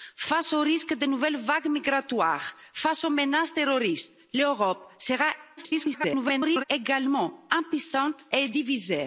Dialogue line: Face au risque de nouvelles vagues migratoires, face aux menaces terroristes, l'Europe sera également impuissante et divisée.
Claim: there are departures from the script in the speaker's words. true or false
true